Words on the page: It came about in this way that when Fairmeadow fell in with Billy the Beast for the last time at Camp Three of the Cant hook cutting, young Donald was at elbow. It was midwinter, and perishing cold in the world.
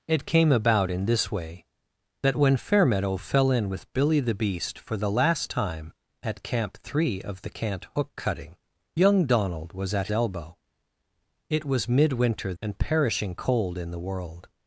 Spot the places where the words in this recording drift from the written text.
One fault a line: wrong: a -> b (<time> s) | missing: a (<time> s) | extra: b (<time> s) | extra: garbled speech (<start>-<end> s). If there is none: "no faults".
no faults